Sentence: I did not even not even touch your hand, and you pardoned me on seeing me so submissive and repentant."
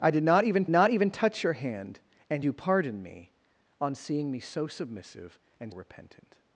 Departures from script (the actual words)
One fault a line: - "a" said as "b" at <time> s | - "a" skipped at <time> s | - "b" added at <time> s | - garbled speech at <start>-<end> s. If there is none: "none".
none